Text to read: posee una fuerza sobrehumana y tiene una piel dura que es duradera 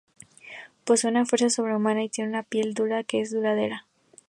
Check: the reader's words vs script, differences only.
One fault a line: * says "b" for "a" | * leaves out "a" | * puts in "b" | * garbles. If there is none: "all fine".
all fine